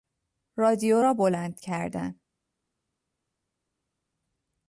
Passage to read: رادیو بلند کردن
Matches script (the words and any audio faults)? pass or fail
fail